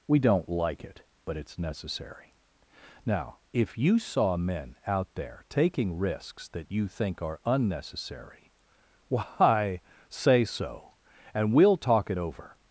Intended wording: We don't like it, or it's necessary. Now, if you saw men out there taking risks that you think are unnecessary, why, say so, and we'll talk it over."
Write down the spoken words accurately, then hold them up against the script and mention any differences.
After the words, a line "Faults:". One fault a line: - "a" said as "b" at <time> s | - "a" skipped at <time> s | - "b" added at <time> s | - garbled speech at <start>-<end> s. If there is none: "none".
We don't like it, but it's necessary. Now, if you saw men out there taking risks that you think are unnecessary, why, say so, and we'll talk it over."
Faults:
- "or" said as "but" at 1.2 s